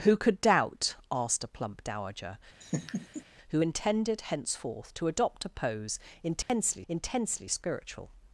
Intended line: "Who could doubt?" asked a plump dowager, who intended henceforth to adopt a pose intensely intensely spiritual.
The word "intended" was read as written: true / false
true